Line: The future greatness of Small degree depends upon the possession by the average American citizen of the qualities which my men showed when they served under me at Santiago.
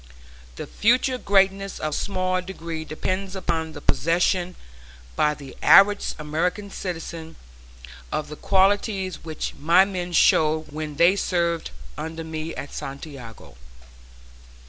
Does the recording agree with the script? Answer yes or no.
yes